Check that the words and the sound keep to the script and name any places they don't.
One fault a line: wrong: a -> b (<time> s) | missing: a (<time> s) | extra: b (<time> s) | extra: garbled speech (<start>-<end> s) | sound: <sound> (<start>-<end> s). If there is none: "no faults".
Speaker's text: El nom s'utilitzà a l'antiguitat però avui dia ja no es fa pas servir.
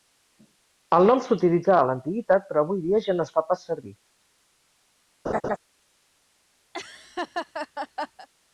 sound: laugh (5.3-5.6 s)
sound: laugh (6.7-8.3 s)